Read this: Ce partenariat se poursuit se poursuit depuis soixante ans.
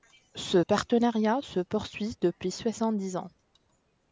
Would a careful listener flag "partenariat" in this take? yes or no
no